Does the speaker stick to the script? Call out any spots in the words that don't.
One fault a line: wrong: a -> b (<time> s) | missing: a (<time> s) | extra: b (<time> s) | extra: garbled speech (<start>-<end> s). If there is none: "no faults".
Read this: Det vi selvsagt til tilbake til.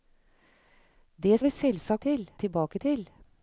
no faults